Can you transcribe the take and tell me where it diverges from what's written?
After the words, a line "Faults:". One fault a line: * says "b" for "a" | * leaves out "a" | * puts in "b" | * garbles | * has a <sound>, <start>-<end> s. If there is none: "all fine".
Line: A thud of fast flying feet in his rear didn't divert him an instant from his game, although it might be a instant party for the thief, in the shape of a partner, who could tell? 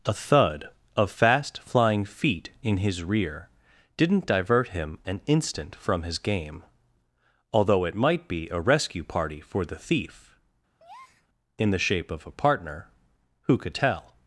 A thud of fast flying feet in his rear didn't divert him an instant from his game, although it might be a rescue party for the thief, in the shape of a partner, who could tell?
Faults:
* says "rescue" for "instant"
* has a breath, 10.8-11.3 s